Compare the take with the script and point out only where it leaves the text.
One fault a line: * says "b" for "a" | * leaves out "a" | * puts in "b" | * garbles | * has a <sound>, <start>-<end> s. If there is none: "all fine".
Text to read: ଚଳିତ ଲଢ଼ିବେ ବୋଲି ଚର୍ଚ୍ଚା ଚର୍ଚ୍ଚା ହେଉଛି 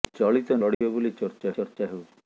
* has a dropout, 0.7-0.8 s